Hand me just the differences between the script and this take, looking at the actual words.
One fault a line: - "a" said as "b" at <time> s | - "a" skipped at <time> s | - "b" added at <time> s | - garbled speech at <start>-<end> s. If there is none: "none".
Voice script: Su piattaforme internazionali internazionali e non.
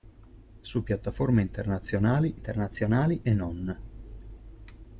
none